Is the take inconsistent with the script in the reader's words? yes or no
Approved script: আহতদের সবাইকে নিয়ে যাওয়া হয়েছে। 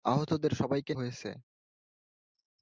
yes